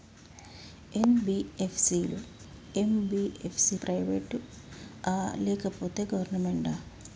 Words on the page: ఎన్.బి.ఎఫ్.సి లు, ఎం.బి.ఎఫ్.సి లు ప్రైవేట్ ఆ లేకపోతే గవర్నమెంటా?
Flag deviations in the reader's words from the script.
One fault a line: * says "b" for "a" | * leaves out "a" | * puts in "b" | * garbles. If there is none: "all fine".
* leaves out "లు"